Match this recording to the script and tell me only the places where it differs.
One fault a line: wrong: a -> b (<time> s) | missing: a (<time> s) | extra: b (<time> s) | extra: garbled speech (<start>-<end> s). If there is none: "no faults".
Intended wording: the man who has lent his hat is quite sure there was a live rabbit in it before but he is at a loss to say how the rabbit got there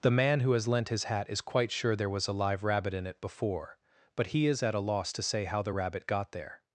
no faults